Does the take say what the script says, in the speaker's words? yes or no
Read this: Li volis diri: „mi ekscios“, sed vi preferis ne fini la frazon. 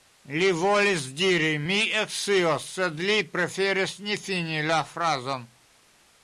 no